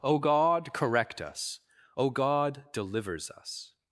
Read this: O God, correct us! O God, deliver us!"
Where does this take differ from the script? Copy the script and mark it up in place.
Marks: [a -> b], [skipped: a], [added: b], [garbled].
O God, correct us! O God, [deliver -> delivers] us!"